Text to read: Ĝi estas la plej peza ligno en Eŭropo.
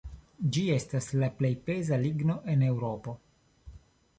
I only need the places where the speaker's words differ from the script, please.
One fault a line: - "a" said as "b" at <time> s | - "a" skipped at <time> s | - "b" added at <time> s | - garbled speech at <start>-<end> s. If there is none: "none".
none